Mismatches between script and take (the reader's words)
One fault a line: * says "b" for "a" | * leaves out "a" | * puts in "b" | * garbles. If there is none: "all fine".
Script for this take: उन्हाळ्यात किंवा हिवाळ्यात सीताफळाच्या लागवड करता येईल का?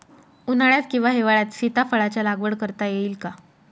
all fine